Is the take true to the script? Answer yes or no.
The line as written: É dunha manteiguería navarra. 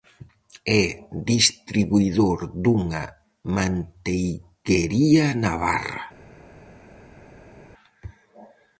no